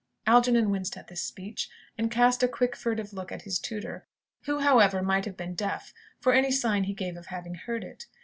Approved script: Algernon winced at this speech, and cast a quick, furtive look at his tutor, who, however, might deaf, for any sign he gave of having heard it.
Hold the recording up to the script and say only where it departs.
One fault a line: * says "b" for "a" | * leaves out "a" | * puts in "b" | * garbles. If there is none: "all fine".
* puts in "have been"